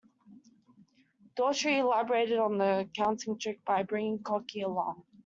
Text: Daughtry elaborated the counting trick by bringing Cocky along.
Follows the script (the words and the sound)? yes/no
no